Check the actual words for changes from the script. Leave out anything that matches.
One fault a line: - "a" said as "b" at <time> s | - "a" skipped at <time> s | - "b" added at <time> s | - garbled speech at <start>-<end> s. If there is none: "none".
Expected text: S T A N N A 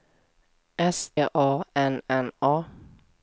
- "T" skipped at 1.1 s